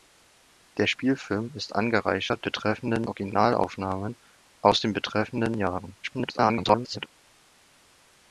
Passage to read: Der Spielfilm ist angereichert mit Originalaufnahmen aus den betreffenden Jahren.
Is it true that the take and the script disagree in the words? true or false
true